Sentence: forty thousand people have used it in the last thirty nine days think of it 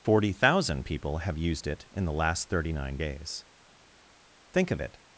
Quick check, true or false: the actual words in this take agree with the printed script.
true